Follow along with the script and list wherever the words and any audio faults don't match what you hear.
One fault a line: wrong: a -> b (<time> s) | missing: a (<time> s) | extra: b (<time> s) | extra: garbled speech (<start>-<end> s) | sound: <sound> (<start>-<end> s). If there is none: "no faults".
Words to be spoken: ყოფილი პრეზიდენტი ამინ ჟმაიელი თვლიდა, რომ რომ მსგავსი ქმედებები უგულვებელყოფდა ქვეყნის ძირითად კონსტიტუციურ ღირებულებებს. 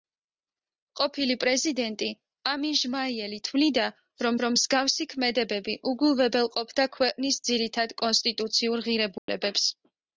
sound: dropout (9.2-9.3 s)